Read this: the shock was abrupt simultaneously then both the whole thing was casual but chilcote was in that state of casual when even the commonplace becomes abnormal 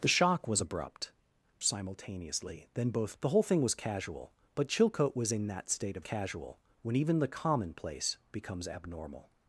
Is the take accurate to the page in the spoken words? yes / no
yes